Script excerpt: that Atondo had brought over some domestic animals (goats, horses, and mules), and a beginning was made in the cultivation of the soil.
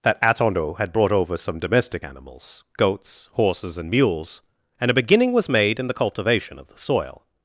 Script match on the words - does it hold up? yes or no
yes